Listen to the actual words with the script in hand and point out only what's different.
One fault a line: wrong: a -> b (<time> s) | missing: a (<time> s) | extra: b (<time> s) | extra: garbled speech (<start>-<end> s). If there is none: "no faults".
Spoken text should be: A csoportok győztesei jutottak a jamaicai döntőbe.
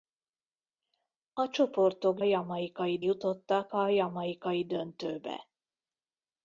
wrong: győztesei -> jamaicai (2.2 s)